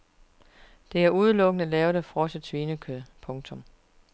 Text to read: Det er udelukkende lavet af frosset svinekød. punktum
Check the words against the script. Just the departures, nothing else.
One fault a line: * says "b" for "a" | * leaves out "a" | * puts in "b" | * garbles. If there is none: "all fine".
all fine